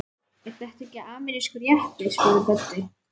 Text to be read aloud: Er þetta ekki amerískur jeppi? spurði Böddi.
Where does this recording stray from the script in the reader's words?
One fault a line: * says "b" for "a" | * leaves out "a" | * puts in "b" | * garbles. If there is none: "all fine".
all fine